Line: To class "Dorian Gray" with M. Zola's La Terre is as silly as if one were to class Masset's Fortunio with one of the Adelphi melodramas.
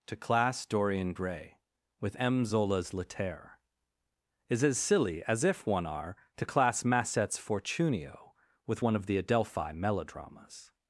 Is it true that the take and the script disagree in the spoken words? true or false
true